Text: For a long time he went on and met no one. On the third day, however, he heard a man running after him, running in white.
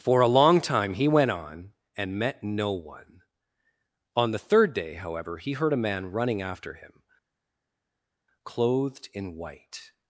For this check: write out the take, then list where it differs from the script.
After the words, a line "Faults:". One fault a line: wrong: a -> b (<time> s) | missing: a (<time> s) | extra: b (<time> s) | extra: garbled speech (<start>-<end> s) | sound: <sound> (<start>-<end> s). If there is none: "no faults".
For a long time he went on and met no one. On the third day, however, he heard a man running after him, clothed in white.
Faults:
wrong: running -> clothed (8.4 s)